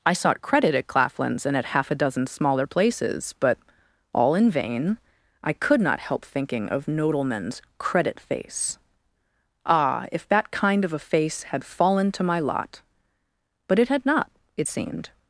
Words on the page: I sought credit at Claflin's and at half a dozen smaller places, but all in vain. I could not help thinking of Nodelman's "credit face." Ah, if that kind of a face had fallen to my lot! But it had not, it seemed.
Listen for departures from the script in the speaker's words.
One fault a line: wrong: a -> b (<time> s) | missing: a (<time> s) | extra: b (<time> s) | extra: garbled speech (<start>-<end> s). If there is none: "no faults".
no faults